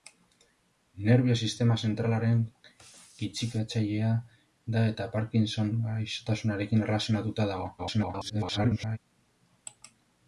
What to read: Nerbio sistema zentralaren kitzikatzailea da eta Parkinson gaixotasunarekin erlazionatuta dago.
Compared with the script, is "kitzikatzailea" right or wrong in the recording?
right